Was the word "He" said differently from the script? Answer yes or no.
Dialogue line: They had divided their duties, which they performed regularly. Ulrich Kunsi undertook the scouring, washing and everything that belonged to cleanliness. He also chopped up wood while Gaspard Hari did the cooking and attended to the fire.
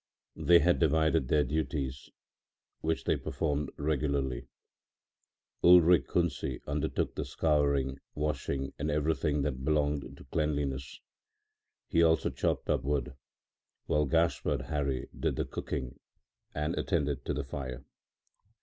no